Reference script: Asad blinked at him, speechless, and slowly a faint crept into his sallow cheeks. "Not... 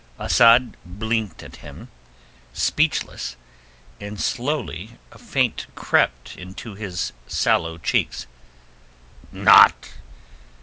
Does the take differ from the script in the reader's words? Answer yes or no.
no